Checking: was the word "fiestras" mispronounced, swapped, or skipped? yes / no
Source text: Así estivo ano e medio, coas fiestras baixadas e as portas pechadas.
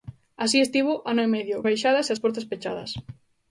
yes